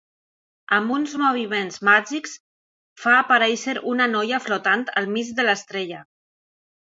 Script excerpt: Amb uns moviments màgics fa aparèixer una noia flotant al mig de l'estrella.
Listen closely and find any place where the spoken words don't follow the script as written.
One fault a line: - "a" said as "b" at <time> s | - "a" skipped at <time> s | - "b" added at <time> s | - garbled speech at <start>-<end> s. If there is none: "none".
none